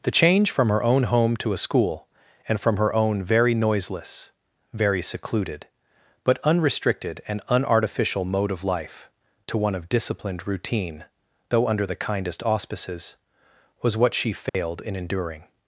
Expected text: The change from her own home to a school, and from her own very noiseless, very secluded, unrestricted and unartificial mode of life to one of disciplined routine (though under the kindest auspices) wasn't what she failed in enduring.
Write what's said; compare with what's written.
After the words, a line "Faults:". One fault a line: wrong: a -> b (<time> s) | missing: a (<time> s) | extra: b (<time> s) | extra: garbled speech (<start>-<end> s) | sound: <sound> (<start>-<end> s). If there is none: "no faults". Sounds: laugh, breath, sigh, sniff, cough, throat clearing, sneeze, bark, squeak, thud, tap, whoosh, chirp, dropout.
The change from her own home to a school, and from her own very noiseless, very secluded, but unrestricted and unartificial mode of life to one of disciplined routine (though under the kindest auspices) was what she failed in enduring.
Faults:
extra: but (6.2 s)
wrong: wasn't -> was (13.8 s)
sound: dropout (14.5-14.5 s)